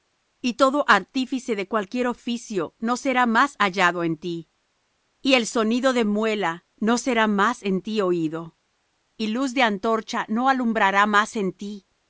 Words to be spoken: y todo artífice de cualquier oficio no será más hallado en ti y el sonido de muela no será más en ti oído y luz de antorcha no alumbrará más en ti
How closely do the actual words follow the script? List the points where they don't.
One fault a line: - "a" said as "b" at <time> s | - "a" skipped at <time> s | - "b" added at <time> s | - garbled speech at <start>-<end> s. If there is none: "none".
none